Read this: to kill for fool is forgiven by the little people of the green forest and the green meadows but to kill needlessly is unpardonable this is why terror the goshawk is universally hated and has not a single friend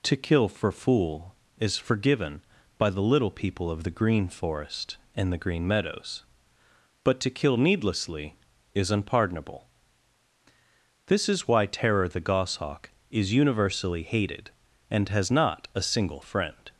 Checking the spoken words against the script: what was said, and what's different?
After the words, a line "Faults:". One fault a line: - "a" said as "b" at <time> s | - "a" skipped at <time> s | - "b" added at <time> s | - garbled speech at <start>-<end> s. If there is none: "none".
to kill for fool is forgiven by the little people of the green forest and the green meadows but to kill needlessly is unpardonable this is why terror the goshawk is universally hated and has not a single friend
Faults:
none